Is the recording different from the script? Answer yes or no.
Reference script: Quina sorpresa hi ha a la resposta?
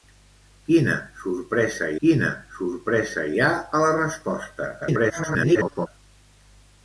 yes